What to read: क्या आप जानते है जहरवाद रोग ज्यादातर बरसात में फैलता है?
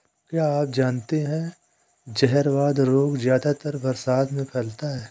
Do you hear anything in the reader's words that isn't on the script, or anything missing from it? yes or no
no